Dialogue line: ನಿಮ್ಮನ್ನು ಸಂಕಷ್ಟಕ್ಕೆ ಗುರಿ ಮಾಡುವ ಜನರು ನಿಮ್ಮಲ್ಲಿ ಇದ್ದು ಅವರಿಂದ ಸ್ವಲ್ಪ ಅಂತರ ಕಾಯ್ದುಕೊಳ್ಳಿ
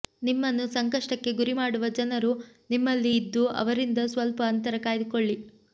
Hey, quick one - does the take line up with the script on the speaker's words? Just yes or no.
yes